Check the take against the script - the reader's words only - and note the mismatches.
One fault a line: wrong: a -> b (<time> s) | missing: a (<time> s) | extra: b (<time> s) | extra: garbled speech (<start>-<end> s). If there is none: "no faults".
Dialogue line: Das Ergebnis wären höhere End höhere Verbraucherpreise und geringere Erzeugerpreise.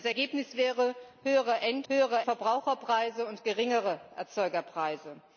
no faults